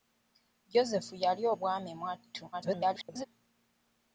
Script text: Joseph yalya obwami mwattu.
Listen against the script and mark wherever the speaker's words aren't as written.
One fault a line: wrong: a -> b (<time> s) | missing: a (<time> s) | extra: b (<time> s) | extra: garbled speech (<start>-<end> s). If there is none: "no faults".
extra: garbled speech (2.5-3.2 s)